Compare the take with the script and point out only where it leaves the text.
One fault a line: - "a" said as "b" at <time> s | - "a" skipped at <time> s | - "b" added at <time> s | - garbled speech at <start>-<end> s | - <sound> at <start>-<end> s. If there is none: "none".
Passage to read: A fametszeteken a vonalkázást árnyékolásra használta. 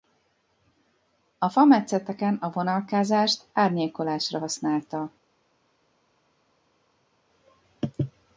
none